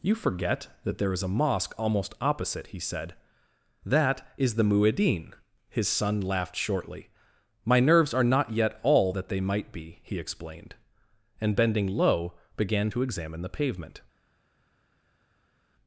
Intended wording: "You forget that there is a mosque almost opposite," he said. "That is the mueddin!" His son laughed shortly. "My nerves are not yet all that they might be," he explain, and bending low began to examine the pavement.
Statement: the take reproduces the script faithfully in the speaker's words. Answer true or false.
false